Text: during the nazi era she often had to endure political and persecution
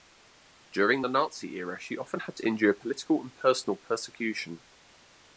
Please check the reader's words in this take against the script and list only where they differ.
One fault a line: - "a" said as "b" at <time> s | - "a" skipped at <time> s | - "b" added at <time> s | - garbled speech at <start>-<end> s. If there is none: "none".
- "personal" added at 3.4 s